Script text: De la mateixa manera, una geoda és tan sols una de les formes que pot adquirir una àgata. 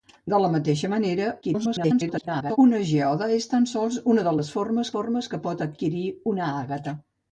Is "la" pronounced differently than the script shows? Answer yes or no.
no